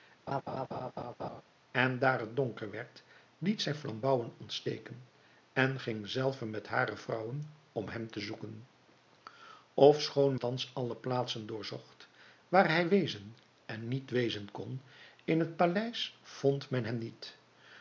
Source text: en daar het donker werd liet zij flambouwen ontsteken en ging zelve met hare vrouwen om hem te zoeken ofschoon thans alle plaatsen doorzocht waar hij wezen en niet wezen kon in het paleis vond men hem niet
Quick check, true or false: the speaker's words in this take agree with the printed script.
true